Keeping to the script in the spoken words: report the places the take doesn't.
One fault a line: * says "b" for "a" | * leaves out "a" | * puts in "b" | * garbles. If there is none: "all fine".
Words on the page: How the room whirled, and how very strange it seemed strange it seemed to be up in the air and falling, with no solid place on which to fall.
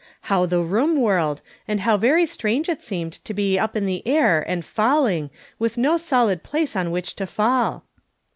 * leaves out "strange it seemed"